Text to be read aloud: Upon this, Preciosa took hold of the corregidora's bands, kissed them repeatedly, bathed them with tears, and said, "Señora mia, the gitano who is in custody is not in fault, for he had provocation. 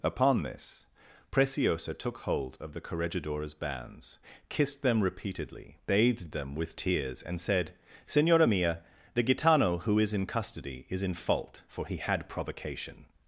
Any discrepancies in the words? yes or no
yes